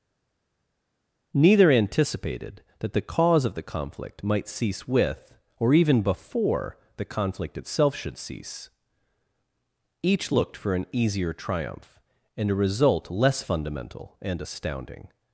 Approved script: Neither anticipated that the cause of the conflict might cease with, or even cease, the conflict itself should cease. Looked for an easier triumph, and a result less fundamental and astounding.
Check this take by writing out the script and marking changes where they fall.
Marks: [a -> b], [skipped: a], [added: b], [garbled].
Neither anticipated that the cause of the conflict might cease with, or even [cease, -> before] the conflict itself should cease. [added: Each] Looked for an easier triumph, and a result less fundamental and astounding.